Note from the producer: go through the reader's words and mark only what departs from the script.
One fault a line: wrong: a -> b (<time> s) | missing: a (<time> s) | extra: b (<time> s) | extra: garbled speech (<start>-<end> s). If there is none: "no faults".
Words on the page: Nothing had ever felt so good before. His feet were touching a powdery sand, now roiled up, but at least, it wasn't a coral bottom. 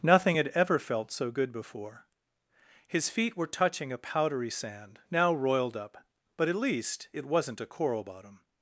no faults